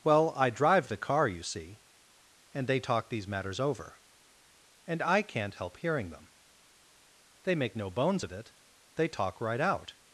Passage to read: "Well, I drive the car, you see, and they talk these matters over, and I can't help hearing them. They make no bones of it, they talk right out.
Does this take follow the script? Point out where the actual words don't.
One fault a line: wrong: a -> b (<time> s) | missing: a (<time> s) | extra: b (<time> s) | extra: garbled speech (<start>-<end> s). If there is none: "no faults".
no faults